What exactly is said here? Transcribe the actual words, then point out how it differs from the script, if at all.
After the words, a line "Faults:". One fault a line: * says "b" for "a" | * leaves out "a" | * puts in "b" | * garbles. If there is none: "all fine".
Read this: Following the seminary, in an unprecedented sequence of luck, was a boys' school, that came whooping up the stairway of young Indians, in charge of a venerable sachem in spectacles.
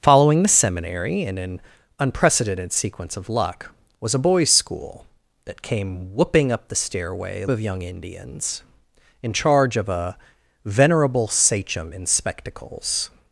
Following the seminary, in an unprecedented sequence of luck, was a boys' school, that came whooping up the stairway of young Indians, in charge of a venerable sachem in spectacles.
Faults:
all fine